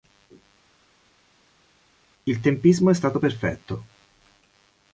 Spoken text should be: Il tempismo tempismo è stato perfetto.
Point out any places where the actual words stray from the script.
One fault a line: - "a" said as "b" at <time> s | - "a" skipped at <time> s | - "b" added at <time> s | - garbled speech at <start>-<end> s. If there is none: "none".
- "tempismo" skipped at 2.9 s